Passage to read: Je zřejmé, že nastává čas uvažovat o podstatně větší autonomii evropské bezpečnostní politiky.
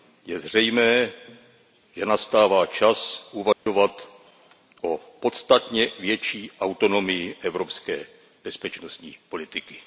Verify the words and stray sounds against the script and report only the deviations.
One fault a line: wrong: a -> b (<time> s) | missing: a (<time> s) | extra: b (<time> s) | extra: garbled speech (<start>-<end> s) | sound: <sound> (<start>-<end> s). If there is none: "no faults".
sound: dropout (3.5-3.7 s)